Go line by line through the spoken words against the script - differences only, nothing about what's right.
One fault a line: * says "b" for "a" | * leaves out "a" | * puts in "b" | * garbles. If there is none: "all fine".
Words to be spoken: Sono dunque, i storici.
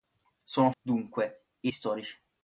all fine